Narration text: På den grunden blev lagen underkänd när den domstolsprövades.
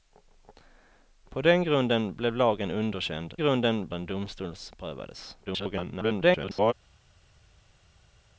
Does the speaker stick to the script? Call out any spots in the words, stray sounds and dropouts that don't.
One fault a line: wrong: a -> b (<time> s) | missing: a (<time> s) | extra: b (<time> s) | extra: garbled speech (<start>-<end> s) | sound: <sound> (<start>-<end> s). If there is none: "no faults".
wrong: när -> grunden (3.4 s)
extra: garbled speech (5.5-6.7 s)